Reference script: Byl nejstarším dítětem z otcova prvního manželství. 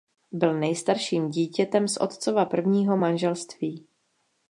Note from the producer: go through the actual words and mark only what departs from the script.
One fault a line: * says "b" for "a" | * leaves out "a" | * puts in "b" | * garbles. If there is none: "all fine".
all fine